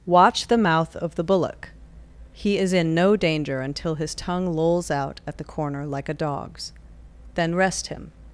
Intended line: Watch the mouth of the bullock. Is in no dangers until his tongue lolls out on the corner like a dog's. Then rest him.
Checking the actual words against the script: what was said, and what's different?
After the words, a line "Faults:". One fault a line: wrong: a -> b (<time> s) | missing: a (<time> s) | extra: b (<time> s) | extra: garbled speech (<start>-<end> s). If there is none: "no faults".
Watch the mouth of the bullock. He is in no danger until his tongue lolls out at the corner like a dog's. Then rest him.
Faults:
extra: He (2.3 s)
wrong: dangers -> danger (3.1 s)
wrong: on -> at (5.3 s)